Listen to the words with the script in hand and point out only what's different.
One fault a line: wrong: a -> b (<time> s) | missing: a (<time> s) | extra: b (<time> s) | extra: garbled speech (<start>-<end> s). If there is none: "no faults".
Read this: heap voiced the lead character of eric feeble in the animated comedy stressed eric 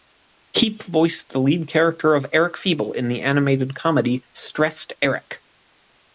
no faults